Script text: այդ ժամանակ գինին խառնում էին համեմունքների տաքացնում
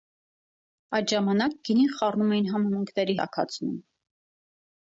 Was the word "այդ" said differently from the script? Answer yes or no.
no